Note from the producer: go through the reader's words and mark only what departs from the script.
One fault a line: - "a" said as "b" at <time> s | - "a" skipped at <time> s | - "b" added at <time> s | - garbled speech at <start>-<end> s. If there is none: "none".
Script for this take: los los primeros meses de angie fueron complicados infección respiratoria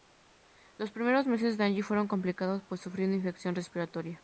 - "los" skipped at 0.9 s
- "pues sufrió una" added at 2.7 s